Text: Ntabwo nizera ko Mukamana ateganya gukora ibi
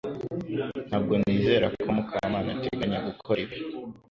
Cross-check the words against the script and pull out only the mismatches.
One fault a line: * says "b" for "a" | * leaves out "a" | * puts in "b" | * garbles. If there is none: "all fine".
all fine